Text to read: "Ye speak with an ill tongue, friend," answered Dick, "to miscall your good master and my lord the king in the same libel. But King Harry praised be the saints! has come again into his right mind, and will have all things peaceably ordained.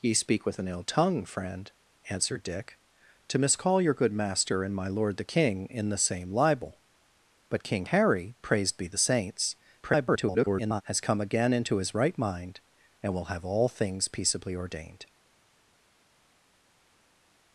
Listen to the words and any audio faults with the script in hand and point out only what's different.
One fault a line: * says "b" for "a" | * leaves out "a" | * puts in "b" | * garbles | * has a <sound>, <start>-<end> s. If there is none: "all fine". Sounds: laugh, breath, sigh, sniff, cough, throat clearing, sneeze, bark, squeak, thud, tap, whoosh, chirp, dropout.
* garbles